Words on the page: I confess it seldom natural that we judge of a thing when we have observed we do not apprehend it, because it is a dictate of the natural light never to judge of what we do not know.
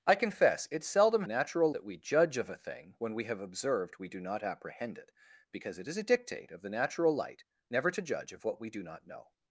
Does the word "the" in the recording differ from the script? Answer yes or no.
no